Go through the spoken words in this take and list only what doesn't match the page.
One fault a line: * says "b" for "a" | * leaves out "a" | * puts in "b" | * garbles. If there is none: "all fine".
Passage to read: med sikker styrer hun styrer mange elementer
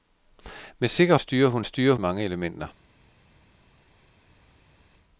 all fine